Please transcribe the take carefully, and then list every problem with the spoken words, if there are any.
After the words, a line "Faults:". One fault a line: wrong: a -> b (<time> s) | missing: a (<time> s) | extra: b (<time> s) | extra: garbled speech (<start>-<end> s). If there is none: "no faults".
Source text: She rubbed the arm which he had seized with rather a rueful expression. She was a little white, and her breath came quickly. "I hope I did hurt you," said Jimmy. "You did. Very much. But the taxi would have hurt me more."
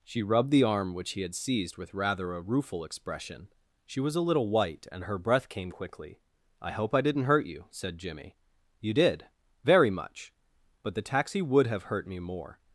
She rubbed the arm which he had seized with rather a rueful expression. She was a little white, and her breath came quickly. "I hope I didn't hurt you," said Jimmy. "You did. Very much. But the taxi would have hurt me more."
Faults:
wrong: did -> didn't (7.0 s)